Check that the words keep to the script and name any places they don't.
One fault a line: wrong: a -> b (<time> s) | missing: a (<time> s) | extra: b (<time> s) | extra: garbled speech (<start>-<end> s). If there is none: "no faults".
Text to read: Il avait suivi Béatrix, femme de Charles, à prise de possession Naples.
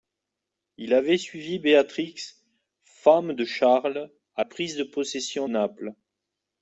no faults